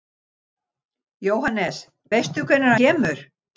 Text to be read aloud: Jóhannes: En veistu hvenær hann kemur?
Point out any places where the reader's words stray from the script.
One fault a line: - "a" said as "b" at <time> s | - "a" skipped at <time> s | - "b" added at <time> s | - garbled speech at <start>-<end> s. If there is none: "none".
- "En" skipped at 1.8 s
- "hann" skipped at 2.8 s